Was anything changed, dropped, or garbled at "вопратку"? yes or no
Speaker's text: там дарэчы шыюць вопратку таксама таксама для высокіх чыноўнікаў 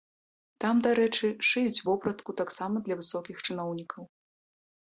no